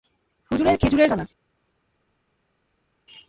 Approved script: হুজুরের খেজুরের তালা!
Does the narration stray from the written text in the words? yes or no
no